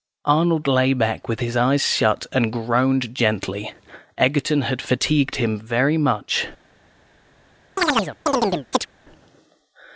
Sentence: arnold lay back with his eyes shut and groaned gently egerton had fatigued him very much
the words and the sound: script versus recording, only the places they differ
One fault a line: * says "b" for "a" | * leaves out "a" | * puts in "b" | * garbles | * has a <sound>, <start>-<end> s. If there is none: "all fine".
* has a chirp, 7.8-8.9 s